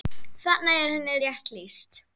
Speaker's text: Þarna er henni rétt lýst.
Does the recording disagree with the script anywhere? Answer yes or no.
no